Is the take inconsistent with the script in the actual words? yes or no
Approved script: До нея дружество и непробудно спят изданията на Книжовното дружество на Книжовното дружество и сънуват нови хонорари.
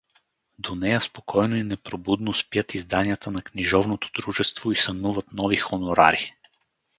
yes